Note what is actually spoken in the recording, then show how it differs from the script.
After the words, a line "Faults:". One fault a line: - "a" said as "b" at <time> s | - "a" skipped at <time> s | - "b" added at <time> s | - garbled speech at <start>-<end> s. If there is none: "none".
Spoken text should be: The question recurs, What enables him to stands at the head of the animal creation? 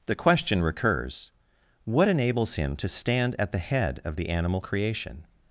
The question recurs, What enables him to stand at the head of the animal creation?
Faults:
- "stands" said as "stand" at 2.9 s